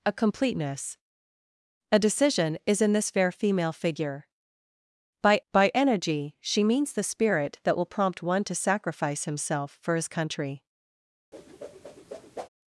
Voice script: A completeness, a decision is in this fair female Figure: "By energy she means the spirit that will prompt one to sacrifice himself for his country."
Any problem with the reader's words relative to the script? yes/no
yes